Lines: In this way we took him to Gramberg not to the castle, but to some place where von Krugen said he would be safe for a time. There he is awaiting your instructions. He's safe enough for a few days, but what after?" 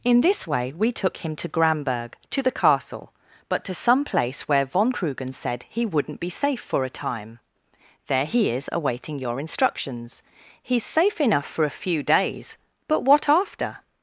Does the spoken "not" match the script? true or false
false